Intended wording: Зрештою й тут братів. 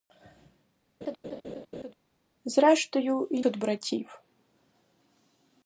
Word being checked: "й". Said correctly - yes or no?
yes